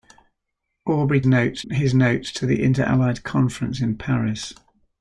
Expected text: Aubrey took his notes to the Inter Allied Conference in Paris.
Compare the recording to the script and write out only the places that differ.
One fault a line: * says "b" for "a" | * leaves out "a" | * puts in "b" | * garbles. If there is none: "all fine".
* says "notes" for "took"